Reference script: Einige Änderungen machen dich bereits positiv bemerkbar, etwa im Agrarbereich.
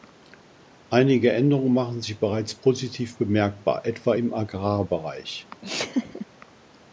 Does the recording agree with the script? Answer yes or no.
no